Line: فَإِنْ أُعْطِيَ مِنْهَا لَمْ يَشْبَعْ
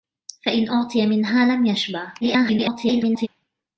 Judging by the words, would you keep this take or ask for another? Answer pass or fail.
fail